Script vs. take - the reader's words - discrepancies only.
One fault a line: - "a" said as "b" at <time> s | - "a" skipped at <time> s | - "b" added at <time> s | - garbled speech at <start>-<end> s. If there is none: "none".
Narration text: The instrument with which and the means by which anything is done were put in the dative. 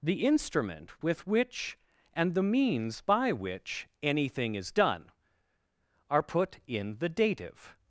- "were" said as "are" at 6.1 s